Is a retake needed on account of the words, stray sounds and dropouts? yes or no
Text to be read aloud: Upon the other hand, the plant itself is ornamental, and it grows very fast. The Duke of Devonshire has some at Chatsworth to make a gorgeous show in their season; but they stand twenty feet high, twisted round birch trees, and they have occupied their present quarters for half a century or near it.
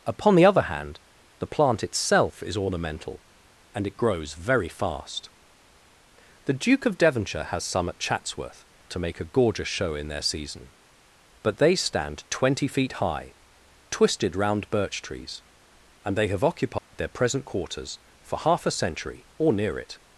yes